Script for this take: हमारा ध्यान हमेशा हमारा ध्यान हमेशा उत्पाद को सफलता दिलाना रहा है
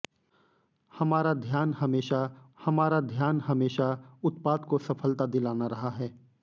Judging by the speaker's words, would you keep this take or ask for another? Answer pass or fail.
pass